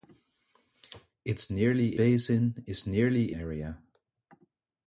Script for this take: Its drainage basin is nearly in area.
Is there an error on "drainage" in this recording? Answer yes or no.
yes